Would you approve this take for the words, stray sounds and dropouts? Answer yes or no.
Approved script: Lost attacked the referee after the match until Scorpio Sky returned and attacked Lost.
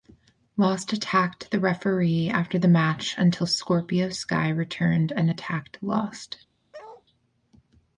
no